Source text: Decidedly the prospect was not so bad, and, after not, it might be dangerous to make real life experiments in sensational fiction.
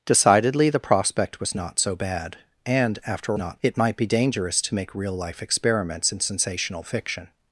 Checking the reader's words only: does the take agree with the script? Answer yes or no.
yes